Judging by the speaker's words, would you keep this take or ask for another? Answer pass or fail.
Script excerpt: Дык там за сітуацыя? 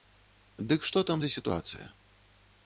fail